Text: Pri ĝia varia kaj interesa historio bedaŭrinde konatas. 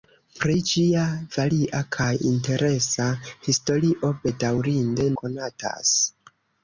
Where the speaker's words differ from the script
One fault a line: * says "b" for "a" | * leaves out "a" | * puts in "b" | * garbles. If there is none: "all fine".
all fine